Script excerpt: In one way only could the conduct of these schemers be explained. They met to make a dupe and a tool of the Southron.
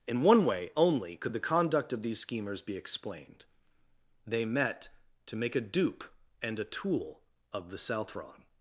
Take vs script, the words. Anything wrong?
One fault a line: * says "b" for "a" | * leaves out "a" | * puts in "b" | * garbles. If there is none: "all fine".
all fine